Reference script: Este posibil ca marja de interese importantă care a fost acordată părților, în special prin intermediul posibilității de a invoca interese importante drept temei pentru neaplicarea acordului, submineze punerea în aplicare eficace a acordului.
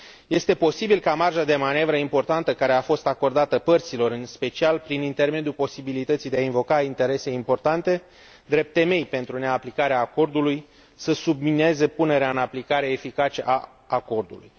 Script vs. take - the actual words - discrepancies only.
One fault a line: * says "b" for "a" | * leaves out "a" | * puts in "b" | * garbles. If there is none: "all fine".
* says "manevră" for "interese"
* puts in "să"